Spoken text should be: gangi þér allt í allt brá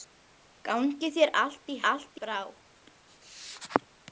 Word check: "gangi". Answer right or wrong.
right